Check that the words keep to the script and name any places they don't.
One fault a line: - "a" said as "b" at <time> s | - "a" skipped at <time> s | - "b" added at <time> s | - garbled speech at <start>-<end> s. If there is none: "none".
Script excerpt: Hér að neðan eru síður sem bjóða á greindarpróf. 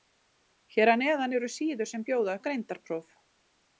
none